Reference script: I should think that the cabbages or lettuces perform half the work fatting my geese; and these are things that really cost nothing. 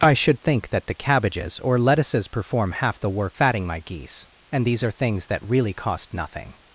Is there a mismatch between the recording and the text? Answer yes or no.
no